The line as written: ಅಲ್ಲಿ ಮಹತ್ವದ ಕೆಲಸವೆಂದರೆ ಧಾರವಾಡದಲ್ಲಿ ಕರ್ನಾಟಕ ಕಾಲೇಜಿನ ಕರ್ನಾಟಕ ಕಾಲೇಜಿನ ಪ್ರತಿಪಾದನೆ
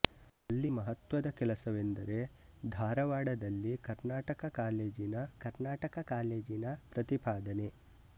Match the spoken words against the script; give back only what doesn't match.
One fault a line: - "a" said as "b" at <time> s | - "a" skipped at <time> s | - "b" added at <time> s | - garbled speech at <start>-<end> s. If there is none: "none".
none